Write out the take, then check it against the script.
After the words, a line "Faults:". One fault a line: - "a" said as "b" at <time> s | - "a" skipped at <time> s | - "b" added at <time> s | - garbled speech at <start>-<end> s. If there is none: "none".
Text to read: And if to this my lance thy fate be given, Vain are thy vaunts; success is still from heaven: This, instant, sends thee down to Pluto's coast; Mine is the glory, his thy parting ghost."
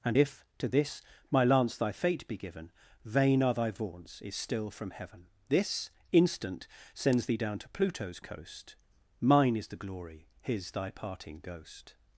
And if to this my lance thy fate be given, Vain are thy vaunts; is still from heaven: This, instant, sends thee down to Pluto's coast; Mine is the glory, his thy parting ghost."
Faults:
- "success" skipped at 4.2 s